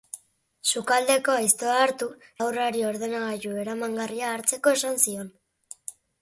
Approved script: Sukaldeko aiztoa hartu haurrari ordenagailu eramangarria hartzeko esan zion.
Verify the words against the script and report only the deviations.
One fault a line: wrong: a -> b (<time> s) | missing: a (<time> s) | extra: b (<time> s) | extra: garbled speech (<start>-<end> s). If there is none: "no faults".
no faults